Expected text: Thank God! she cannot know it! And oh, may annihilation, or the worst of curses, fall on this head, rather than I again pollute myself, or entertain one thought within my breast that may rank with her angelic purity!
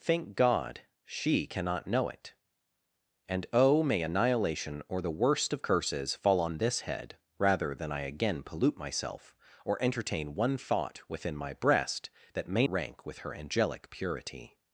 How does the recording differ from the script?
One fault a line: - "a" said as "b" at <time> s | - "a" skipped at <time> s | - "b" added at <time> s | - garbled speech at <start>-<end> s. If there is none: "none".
none